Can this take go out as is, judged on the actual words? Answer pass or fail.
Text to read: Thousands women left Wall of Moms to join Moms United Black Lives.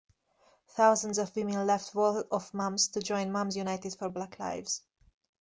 fail